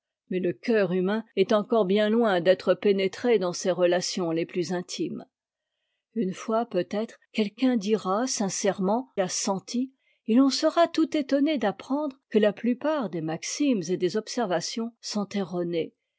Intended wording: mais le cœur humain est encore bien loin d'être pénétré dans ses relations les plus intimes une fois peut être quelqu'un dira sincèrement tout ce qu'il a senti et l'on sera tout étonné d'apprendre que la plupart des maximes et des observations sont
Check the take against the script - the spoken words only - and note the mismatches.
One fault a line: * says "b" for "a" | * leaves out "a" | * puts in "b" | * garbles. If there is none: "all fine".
* leaves out "tout ce qu'il"